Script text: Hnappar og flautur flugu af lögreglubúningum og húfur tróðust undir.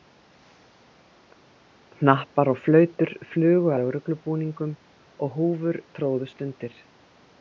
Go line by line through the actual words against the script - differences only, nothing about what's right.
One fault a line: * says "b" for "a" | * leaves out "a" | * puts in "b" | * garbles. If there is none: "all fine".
* leaves out "af"